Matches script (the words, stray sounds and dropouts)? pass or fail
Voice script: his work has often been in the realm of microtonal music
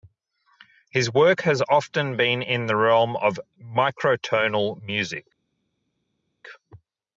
pass